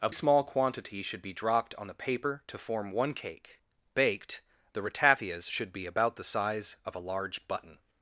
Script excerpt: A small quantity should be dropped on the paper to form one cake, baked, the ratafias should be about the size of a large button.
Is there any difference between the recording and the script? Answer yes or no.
no